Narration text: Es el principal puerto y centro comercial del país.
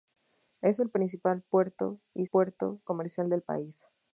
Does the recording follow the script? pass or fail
fail